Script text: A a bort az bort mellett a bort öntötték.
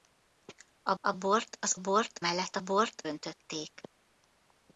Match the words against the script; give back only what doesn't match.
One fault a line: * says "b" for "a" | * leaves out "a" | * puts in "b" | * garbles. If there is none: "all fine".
all fine